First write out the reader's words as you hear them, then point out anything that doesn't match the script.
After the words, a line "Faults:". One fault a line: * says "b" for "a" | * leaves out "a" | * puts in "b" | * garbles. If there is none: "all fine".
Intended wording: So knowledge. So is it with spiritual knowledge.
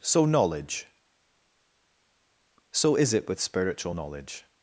So knowledge. So is it with spiritual knowledge.
Faults:
all fine